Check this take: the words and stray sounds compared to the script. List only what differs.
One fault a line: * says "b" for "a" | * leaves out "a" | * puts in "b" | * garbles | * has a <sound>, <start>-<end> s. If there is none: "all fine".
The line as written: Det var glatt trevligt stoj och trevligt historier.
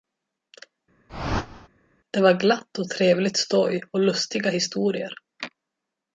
* has a whoosh, 1.1-1.7 s
* puts in "och"
* says "lustiga" for "trevligt"